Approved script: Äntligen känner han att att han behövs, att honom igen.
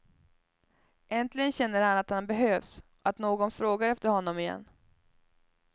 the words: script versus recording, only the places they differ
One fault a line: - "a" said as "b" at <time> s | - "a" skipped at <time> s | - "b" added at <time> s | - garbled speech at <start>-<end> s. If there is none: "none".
- "att" skipped at 2.1 s
- "någon frågar efter" added at 3.2 s